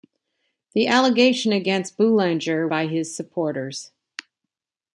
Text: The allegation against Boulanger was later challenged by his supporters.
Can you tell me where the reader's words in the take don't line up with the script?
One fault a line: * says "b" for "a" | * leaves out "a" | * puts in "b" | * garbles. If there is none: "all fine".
* leaves out "was later challenged"